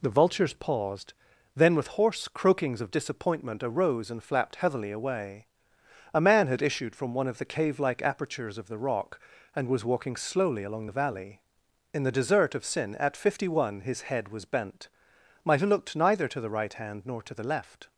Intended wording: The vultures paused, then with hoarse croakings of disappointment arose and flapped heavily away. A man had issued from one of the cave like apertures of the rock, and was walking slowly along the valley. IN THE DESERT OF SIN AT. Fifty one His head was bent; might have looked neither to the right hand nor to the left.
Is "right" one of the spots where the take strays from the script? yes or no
no